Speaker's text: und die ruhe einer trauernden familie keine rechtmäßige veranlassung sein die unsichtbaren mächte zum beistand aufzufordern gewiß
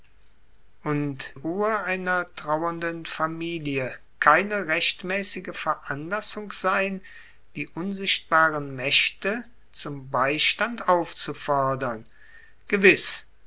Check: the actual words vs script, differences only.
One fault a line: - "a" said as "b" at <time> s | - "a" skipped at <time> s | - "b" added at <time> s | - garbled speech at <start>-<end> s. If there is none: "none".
- "die" skipped at 1.4 s